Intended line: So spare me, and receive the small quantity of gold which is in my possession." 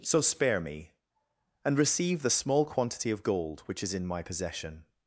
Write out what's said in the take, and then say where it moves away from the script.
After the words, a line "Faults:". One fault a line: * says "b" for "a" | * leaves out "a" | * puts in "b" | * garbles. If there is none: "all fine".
So spare me, and receive the small quantity of gold which is in my possession."
Faults:
all fine